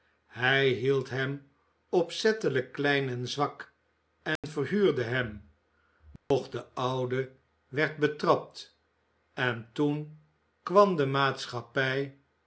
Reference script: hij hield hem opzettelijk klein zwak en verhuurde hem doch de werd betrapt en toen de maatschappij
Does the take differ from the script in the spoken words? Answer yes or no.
yes